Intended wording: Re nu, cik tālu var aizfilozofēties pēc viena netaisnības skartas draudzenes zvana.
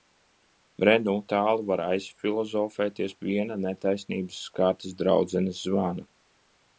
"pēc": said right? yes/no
no